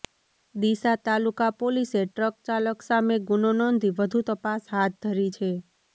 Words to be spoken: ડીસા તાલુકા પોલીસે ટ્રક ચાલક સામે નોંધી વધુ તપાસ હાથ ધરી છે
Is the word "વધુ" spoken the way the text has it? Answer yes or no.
yes